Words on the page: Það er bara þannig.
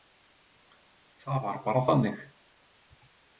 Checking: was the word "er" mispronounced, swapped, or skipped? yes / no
yes